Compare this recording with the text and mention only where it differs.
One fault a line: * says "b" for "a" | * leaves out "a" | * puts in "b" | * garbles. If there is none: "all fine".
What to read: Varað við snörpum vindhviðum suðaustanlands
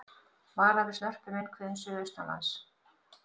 all fine